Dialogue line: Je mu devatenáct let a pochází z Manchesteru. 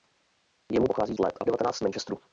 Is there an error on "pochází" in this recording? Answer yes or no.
yes